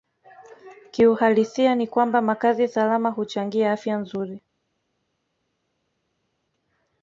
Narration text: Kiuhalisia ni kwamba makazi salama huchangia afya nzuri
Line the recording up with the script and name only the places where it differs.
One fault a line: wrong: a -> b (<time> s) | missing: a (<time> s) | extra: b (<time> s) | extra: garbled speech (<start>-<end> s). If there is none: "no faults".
no faults